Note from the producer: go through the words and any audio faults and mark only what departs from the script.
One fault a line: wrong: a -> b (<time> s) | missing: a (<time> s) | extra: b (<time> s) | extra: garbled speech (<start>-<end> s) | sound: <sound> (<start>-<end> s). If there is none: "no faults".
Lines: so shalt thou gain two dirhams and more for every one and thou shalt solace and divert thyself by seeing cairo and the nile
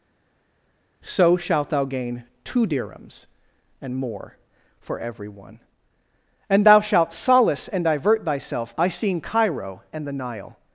no faults